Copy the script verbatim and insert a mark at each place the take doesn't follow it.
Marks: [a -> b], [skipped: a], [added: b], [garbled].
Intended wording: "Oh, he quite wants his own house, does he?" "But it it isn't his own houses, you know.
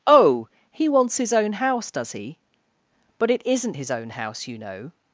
"Oh, he [skipped: quite] wants his own house, does he?" "But it [skipped: it] isn't his own [houses, -> house] you know.